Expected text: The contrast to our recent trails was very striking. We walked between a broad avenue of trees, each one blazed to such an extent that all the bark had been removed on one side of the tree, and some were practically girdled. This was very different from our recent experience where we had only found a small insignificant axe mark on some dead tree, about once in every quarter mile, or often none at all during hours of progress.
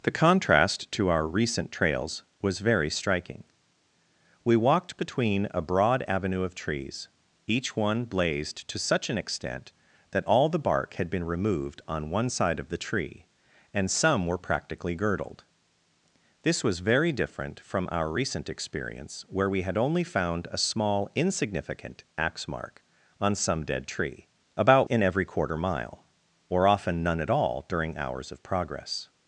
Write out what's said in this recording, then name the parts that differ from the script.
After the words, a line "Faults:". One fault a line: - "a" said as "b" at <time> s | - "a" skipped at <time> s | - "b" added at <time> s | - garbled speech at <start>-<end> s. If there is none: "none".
The contrast to our recent trails was very striking. We walked between a broad avenue of trees, each one blazed to such an extent that all the bark had been removed on one side of the tree, and some were practically girdled. This was very different from our recent experience where we had only found a small insignificant axe mark on some dead tree, about in every quarter mile, or often none at all during hours of progress.
Faults:
- "once" skipped at 24.9 s